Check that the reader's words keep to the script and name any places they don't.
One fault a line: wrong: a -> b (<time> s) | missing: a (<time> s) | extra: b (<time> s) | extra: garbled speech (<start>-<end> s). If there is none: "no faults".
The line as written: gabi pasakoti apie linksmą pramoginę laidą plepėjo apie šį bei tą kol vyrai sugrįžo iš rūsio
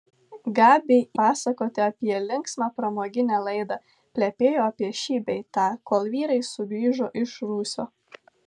no faults